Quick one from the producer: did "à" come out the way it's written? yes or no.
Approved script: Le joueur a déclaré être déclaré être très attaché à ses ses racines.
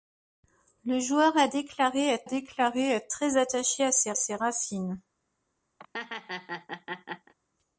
yes